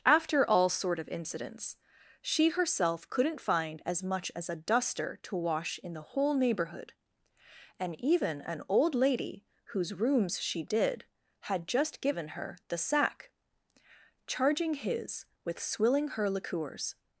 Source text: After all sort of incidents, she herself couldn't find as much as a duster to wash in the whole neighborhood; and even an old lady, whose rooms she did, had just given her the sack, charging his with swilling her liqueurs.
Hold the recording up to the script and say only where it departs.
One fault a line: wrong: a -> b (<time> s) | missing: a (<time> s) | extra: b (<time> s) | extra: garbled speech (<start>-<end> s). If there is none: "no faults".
no faults